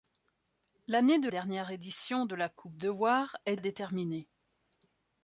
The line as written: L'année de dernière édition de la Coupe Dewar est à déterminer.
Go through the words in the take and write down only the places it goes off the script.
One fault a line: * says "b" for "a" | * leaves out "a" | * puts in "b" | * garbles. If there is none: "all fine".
all fine